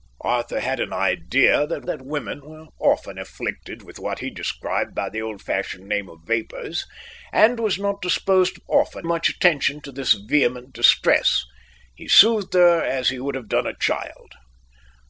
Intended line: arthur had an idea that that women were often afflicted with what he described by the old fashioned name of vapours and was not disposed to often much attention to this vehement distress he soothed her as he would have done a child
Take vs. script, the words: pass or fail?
pass